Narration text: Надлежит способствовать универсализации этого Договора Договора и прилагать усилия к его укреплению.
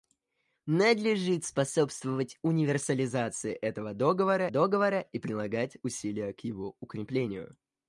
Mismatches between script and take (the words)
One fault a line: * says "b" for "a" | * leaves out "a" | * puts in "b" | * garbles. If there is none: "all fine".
all fine